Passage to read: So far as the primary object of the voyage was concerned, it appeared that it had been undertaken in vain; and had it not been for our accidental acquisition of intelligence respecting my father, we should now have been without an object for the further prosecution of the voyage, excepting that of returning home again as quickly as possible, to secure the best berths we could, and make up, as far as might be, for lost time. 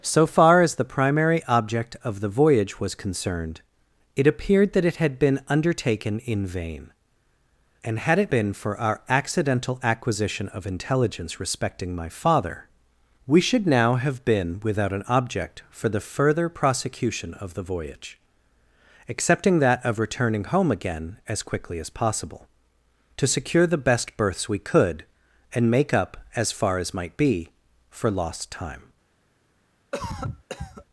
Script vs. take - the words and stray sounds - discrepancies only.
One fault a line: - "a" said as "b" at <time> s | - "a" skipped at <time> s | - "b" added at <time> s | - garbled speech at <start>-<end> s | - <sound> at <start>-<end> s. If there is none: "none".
- "not" skipped at 8.3 s
- cough at 29.9-30.8 s